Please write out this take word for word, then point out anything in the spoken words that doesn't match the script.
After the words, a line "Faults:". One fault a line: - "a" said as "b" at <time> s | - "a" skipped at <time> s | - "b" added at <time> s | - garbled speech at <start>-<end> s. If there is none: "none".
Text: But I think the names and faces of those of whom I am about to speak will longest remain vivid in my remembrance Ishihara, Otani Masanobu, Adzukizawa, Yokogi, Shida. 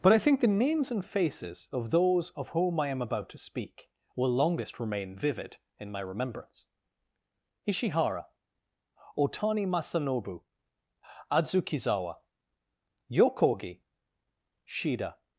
But I think the names and faces of those of whom I am about to speak will longest remain vivid in my remembrance Ishihara, Otani Masanobu, Adzukizawa, Yokogi, Shida.
Faults:
none